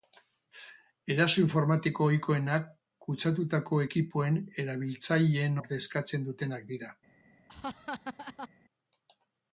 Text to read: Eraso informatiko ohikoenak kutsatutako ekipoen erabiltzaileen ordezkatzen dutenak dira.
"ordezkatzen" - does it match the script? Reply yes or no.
yes